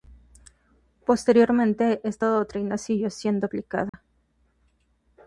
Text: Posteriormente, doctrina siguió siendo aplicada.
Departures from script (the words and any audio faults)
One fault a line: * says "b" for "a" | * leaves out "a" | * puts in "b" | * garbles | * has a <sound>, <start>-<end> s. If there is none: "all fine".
* puts in "esta"
* has a dropout, 3.9-3.9 s